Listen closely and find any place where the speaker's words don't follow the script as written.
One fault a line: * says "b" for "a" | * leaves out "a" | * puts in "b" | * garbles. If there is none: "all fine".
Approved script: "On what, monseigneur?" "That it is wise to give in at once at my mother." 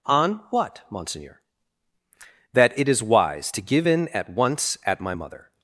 all fine